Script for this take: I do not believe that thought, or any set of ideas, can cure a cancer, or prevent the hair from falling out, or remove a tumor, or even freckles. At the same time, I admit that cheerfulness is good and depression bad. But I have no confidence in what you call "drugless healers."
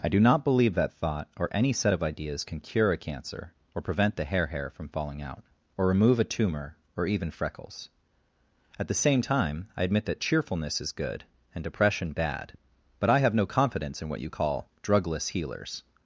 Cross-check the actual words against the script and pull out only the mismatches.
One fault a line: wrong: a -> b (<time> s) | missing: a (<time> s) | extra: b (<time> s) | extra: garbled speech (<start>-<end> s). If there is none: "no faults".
extra: hair (4.5 s)